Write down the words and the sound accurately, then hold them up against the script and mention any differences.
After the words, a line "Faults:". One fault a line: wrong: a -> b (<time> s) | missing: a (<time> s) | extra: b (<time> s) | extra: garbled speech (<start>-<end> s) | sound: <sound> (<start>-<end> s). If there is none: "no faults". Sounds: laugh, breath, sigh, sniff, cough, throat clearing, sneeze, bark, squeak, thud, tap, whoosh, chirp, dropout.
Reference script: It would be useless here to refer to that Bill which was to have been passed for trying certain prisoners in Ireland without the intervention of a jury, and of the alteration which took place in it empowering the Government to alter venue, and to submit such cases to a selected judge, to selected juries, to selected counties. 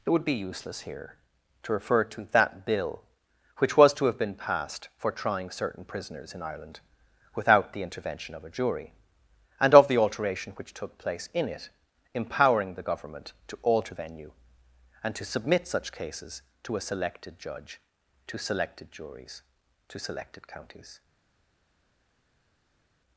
It would be useless here to refer to that Bill which was to have been passed for trying certain prisoners in Ireland without the intervention of a jury, and of the alteration which took place in it empowering the Government to alter venue, and to submit such cases to a selected judge, to selected juries, to selected counties.
Faults:
no faults